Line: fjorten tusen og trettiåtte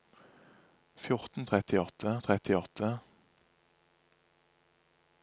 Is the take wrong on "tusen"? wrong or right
wrong